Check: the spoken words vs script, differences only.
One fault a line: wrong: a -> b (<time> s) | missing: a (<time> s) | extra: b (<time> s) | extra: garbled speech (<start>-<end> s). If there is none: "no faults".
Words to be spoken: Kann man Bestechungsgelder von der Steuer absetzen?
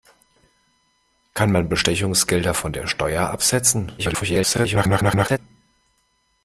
extra: garbled speech (4.0-5.4 s)